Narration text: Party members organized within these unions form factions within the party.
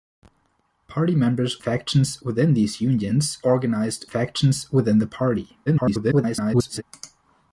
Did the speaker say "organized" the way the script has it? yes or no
no